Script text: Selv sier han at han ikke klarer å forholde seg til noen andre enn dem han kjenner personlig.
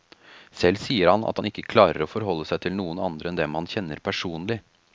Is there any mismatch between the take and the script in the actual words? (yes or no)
no